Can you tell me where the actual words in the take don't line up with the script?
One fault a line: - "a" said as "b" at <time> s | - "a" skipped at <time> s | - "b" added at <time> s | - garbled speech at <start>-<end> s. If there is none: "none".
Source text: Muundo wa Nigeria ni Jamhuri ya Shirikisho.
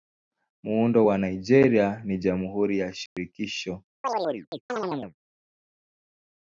none